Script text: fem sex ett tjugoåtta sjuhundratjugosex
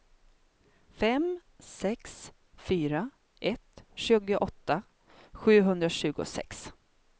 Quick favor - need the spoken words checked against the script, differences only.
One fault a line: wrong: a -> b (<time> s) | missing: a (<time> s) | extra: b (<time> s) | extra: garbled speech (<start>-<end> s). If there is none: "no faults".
extra: fyra (2.5 s)